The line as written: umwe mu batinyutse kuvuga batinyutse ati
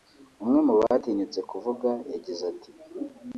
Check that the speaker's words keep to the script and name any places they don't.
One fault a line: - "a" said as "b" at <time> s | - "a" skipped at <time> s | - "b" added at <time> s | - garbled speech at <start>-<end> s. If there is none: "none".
- "batinyutse" said as "yagize" at 2.1 s